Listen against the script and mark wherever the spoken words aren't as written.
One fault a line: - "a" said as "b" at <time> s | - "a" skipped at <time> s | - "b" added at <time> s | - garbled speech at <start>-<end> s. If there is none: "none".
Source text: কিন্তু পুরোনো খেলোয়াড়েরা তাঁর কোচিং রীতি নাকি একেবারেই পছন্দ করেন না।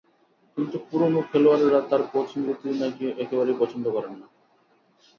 none